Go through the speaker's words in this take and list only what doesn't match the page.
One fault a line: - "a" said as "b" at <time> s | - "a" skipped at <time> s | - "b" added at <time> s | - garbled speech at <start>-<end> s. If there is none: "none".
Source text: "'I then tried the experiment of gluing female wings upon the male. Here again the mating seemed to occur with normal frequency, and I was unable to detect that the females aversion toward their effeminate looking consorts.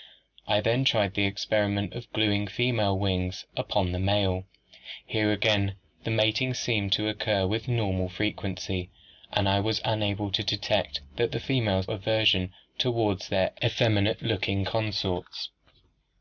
none